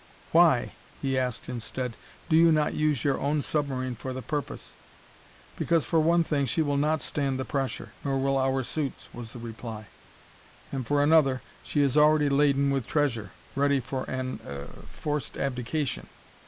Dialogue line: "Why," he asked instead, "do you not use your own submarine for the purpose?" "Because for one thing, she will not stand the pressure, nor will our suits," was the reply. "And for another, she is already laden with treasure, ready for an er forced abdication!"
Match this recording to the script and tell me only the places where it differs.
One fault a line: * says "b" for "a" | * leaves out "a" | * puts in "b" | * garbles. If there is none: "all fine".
all fine